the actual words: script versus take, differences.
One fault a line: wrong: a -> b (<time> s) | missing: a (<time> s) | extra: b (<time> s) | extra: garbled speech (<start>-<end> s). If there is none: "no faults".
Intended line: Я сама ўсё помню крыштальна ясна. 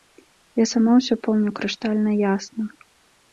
no faults